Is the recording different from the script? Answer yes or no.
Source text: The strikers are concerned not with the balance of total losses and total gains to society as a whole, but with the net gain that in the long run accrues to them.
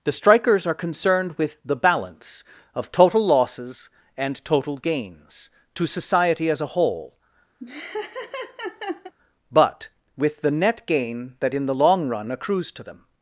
yes